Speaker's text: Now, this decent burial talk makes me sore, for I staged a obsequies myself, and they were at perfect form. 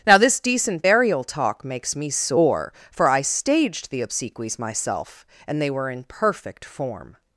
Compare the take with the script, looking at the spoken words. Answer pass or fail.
fail